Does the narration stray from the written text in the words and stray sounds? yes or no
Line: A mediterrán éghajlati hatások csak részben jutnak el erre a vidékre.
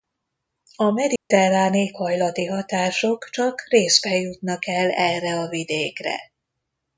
yes